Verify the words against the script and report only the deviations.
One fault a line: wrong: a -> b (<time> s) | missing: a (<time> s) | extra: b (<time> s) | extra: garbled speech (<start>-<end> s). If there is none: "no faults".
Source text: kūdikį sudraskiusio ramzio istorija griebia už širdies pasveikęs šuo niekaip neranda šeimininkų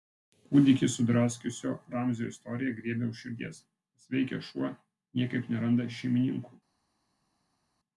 no faults